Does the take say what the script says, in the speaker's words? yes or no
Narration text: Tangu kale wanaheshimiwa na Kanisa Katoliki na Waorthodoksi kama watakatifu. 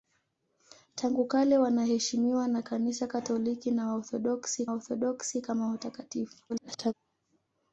no